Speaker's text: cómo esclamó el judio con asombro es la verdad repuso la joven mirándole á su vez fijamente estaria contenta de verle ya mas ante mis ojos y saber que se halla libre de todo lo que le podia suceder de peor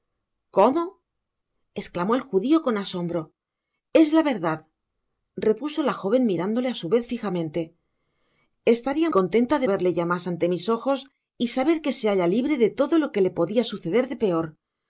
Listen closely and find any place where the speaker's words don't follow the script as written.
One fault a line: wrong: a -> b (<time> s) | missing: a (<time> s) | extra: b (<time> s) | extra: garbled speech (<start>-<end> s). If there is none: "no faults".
no faults